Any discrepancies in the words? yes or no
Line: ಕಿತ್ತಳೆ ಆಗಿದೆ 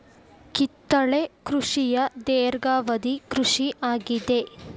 yes